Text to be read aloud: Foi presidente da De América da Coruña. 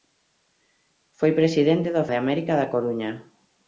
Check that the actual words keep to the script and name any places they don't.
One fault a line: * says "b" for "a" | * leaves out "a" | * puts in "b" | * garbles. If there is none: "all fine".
all fine